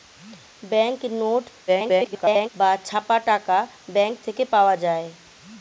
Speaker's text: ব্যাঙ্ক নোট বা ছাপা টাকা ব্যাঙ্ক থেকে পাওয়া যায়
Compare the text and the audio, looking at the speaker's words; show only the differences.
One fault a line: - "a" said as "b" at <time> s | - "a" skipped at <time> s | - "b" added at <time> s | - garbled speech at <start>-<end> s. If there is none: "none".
- garbled speech at 1.7-2.5 s